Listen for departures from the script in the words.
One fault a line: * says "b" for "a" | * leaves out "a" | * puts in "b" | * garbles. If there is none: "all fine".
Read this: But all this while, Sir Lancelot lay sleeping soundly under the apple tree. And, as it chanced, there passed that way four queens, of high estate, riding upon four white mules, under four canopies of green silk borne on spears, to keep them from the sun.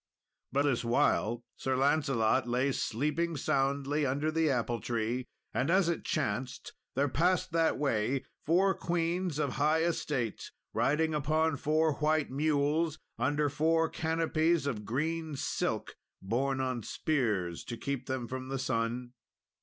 * leaves out "all"